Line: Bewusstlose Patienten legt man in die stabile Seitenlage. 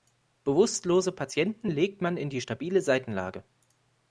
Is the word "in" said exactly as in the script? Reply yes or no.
yes